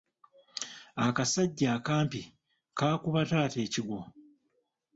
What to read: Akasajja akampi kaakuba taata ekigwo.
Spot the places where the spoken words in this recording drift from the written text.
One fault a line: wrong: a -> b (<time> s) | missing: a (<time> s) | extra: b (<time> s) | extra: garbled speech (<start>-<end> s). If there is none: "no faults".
no faults